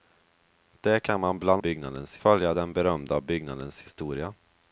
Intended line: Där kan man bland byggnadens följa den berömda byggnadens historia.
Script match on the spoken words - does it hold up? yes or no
yes